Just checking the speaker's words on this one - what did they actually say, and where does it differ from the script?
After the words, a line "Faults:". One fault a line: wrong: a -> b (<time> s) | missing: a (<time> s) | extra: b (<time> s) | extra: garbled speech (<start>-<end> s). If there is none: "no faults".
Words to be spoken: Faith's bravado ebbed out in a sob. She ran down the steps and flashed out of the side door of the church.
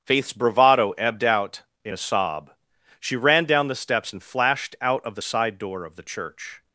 Faith's bravado ebbed out in a sob. She ran down the steps and flashed out of the side door of the church.
Faults:
no faults